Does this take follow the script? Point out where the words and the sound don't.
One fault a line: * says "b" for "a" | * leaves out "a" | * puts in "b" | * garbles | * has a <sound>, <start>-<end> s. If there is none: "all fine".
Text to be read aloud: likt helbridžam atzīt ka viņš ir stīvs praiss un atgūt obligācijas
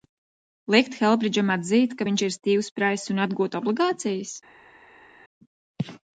all fine